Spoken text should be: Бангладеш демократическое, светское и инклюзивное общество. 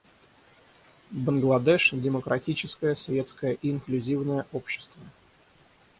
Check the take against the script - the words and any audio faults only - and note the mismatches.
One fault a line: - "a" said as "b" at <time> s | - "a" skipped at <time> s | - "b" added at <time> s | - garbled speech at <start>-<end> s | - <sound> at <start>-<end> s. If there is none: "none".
none